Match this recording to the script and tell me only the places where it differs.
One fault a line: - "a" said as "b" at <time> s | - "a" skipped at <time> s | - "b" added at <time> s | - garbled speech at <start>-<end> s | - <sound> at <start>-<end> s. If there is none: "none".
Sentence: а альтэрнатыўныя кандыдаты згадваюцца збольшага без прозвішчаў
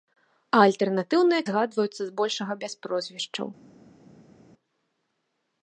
- "кандыдаты" skipped at 1.4 s